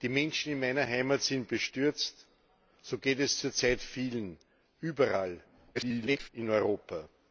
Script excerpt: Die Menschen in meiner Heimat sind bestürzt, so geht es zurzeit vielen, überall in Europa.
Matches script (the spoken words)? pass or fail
fail